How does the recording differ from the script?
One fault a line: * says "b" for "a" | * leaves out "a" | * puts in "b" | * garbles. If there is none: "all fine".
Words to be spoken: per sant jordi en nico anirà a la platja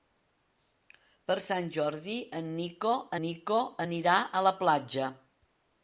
* puts in "nico"